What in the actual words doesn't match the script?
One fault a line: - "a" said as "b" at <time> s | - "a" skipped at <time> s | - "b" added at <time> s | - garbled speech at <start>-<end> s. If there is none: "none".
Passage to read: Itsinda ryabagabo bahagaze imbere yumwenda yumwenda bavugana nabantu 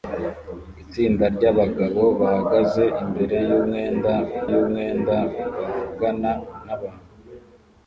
none